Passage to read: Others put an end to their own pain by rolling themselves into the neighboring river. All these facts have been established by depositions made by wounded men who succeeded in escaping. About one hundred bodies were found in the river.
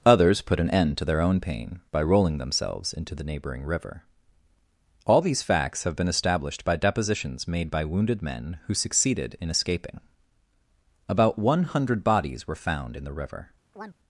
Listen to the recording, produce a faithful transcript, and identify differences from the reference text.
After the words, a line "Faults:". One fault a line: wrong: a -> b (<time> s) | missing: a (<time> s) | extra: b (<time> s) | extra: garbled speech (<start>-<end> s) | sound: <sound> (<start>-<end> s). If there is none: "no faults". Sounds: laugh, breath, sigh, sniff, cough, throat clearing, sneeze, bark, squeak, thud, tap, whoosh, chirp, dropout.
Others put an end to their own pain by rolling themselves into the neighboring river. All these facts have been established by depositions made by wounded men who succeeded in escaping. About one hundred bodies were found in the river.
Faults:
sound: chirp (13.7-14.0 s)